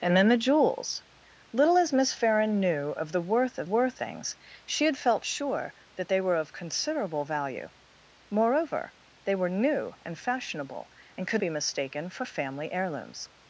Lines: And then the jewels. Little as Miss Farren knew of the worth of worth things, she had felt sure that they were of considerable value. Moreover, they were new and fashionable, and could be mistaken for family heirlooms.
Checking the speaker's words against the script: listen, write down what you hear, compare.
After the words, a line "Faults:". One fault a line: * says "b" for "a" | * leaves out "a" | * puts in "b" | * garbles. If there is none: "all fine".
And then the jewels. Little as Miss Farren knew of the worth of worth things, she had felt sure that they were of considerable value. Moreover, they were new and fashionable, and could be mistaken for family heirlooms.
Faults:
all fine